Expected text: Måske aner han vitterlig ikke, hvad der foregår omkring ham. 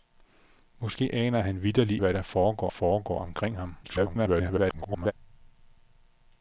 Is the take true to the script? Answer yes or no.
no